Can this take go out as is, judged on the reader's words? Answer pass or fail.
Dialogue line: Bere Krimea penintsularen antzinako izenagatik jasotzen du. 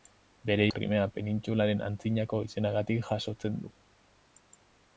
pass